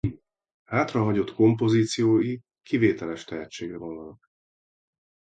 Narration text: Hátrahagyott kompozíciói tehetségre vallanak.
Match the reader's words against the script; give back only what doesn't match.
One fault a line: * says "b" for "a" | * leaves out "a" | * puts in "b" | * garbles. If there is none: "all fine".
* puts in "kivételes"